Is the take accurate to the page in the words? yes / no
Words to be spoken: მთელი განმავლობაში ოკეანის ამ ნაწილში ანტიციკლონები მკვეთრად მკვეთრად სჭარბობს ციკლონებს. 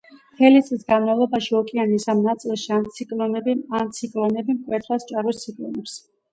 no